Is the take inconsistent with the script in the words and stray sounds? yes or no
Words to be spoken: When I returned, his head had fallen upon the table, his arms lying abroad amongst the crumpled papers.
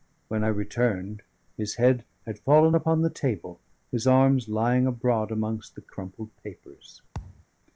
yes